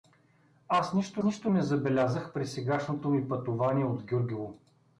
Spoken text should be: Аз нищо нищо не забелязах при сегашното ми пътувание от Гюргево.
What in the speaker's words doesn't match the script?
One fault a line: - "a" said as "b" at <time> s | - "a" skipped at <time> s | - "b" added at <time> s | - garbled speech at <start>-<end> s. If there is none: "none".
none